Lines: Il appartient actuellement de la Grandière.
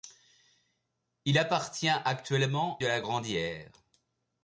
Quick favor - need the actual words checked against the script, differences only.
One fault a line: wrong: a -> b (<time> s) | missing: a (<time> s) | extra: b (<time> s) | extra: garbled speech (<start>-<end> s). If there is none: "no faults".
no faults